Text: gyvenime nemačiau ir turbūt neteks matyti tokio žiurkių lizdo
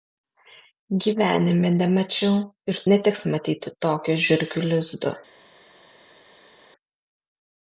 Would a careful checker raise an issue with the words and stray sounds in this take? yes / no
yes